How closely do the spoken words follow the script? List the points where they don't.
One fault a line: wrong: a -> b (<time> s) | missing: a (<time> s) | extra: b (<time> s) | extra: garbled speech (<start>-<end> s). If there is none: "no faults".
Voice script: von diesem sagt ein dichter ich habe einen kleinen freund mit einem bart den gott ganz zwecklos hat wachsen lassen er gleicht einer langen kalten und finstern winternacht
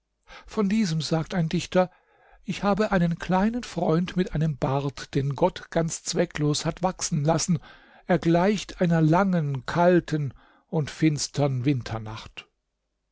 no faults